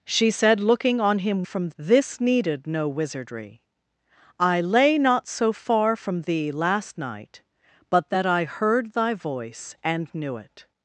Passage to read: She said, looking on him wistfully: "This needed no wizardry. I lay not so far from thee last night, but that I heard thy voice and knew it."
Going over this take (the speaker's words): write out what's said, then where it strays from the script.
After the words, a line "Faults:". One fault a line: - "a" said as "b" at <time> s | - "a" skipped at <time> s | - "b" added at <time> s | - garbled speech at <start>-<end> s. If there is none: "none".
She said, looking on him from: "This needed no wizardry. I lay not so far from thee last night, but that I heard thy voice and knew it."
Faults:
- "wistfully" said as "from" at 1.4 s